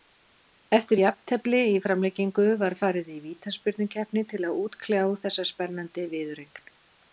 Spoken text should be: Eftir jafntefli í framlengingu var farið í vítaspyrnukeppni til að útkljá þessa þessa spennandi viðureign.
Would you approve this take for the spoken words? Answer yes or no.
no